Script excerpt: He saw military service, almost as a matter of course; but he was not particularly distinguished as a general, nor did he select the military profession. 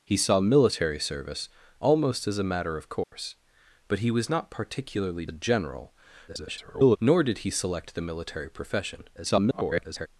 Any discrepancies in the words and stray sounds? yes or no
yes